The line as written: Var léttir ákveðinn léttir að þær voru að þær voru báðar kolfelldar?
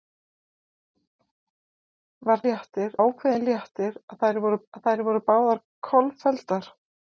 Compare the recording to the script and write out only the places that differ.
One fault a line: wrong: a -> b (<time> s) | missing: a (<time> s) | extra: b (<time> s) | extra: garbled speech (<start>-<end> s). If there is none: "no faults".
no faults